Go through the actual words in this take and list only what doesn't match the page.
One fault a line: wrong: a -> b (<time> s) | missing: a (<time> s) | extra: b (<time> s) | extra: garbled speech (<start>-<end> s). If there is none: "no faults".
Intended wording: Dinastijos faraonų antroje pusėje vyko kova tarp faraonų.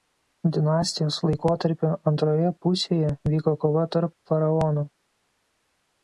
wrong: faraonų -> laikotarpio (1.2 s)